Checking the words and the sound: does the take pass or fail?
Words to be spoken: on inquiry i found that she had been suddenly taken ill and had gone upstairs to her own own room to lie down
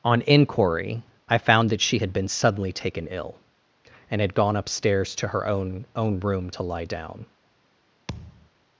fail